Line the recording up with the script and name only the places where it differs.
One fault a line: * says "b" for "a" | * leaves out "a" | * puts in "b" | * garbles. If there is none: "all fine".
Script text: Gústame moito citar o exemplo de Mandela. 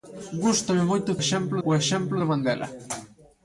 * says "exemplo" for "citar"